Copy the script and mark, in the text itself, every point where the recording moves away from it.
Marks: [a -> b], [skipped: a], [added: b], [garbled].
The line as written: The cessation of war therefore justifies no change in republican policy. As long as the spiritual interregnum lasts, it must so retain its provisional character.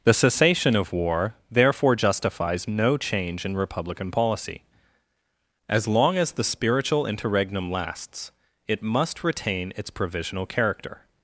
The cessation of war therefore justifies no change in republican policy. As long as the spiritual interregnum lasts, it must [skipped: so] retain its provisional character.